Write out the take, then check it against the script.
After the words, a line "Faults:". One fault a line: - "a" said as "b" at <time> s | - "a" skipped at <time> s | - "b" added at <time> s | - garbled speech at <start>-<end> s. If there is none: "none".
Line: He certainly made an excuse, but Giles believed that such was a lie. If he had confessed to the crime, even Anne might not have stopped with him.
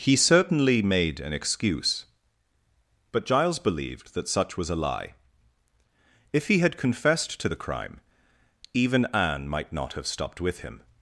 He certainly made an excuse, but Giles believed that such was a lie. If he had confessed to the crime, even Anne might not have stopped with him.
Faults:
none